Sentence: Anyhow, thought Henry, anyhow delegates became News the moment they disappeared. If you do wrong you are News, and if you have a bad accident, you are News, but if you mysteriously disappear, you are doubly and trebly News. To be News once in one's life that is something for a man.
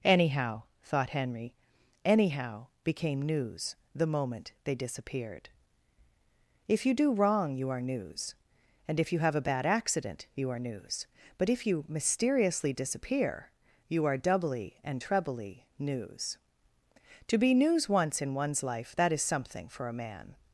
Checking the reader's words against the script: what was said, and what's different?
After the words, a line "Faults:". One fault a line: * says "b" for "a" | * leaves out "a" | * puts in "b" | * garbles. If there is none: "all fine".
Anyhow, thought Henry, anyhow became News the moment they disappeared. If you do wrong you are News, and if you have a bad accident, you are News, but if you mysteriously disappear, you are doubly and trebly News. To be News once in one's life that is something for a man.
Faults:
* leaves out "delegates"